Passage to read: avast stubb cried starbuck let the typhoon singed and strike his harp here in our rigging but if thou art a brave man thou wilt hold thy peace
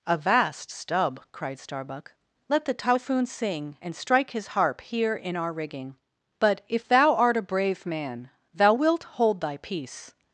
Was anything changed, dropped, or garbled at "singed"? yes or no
yes